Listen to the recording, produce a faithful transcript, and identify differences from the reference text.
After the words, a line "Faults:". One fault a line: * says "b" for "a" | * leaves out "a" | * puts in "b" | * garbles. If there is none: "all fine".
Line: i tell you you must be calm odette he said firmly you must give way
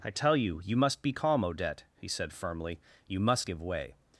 i tell you you must be calm odette he said firmly you must give way
Faults:
all fine